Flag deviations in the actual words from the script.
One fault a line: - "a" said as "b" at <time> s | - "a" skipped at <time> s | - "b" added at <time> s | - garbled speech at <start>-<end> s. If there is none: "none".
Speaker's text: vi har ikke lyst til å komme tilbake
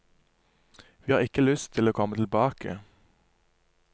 none